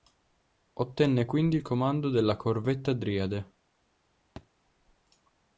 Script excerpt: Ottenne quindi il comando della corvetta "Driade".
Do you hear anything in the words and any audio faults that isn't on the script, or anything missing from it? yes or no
yes